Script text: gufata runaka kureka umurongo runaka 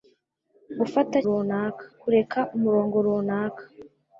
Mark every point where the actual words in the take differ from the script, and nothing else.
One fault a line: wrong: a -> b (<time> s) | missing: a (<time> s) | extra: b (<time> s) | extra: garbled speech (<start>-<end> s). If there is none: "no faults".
no faults